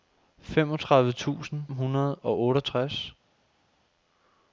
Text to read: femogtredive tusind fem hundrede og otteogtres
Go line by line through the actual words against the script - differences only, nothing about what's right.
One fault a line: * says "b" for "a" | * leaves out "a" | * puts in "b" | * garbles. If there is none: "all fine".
* leaves out "fem"